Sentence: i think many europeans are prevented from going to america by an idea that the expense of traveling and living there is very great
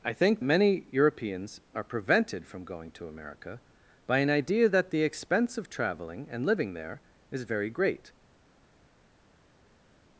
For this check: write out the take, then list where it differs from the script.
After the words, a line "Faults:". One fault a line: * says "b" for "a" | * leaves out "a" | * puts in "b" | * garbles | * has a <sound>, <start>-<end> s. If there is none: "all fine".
i think many europeans are prevented from going to america by an idea that the expense of traveling and living there is very great
Faults:
all fine